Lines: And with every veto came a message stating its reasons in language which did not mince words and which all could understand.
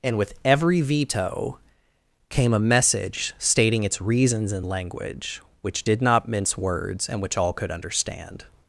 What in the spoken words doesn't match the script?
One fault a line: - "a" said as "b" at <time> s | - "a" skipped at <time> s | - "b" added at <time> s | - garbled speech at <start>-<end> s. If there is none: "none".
none